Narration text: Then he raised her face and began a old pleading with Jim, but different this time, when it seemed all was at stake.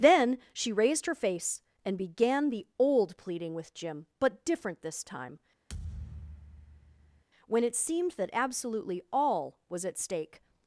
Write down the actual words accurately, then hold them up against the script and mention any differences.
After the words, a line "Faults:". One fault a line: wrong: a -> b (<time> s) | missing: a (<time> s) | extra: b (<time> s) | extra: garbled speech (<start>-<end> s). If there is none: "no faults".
Then she raised her face and began the old pleading with Jim, but different this time, when it seemed that absolutely all was at stake.
Faults:
wrong: he -> she (0.5 s)
wrong: a -> the (2.5 s)
extra: that absolutely (8.1 s)